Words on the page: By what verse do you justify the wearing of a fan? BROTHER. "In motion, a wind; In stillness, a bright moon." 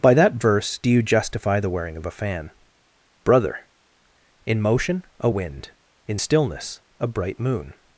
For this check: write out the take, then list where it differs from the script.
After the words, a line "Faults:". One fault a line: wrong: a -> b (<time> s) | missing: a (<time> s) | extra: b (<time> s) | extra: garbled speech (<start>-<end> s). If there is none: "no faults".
By that verse do you justify the wearing of a fan? BROTHER. "In motion, a wind; In stillness, a bright moon."
Faults:
wrong: what -> that (0.1 s)